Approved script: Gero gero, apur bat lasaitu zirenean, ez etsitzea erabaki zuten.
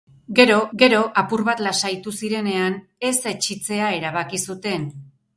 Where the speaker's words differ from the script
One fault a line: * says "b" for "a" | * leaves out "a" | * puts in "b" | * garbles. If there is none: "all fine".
all fine